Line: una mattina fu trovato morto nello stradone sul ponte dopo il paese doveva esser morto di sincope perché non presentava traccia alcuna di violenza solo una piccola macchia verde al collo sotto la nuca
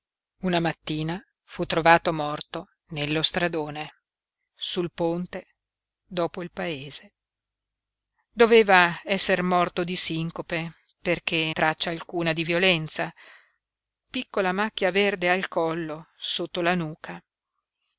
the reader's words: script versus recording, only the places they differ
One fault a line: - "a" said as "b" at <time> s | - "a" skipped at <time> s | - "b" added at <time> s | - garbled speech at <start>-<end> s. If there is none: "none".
- "non presentava" skipped at 11.5 s
- "solo una" skipped at 13.1 s